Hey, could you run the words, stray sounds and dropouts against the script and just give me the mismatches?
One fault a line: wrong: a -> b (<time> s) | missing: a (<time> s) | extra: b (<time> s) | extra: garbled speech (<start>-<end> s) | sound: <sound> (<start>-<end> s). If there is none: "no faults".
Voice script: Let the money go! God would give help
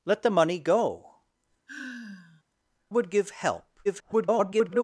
missing: God (1.2 s)
sound: sigh (1.7-2.4 s)
extra: garbled speech (3.8-4.8 s)